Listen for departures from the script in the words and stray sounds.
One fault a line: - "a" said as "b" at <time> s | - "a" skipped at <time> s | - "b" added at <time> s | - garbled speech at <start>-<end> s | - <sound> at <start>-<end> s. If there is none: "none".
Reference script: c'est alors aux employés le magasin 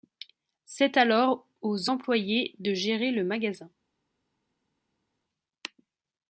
- "de gérer" added at 2.6 s